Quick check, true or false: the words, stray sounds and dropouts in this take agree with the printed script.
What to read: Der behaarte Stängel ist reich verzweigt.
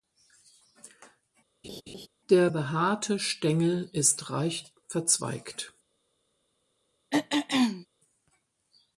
false